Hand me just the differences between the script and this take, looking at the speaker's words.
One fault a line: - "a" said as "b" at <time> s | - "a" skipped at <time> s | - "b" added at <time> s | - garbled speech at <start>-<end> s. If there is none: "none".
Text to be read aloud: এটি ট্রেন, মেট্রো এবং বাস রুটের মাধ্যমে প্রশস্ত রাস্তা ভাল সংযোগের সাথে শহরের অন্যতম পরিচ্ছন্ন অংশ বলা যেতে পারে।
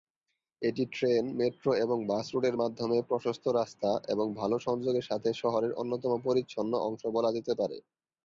- "এবং" added at 4.1 s